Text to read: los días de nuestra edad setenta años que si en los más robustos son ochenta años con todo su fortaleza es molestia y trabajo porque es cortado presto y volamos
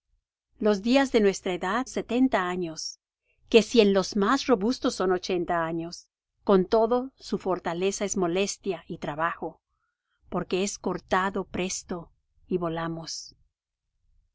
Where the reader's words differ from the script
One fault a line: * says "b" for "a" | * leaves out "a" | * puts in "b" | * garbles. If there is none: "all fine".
all fine